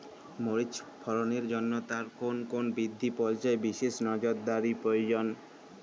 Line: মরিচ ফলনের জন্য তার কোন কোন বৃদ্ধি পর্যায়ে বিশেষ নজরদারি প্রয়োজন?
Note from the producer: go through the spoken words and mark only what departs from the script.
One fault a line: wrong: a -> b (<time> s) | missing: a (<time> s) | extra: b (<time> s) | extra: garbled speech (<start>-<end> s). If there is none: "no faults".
no faults